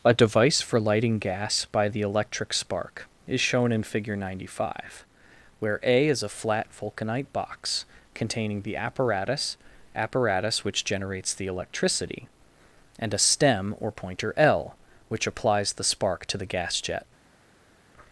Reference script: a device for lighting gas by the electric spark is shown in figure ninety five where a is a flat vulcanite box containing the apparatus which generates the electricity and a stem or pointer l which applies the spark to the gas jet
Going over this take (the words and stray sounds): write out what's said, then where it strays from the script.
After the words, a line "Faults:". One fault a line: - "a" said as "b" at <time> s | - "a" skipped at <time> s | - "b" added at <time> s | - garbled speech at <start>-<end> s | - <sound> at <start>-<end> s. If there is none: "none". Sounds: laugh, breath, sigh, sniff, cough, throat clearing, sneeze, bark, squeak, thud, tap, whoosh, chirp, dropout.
a device for lighting gas by the electric spark is shown in figure ninety five where a is a flat vulcanite box containing the apparatus apparatus which generates the electricity and a stem or pointer l which applies the spark to the gas jet
Faults:
- "apparatus" added at 9.9 s